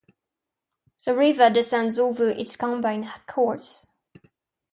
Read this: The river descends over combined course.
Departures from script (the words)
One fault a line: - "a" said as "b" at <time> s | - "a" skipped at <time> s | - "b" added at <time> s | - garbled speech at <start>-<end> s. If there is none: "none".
- "its" added at 2.3 s